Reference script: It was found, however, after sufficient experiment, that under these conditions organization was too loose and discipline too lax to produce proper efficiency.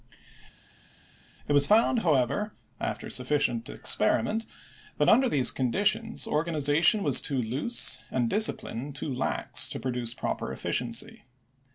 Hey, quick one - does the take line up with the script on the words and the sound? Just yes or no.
yes